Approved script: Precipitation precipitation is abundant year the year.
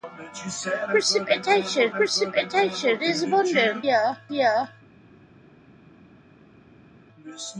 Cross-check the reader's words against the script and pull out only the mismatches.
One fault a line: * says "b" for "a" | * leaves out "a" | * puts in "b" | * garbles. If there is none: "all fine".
all fine